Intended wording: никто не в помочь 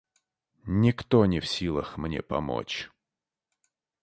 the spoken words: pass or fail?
fail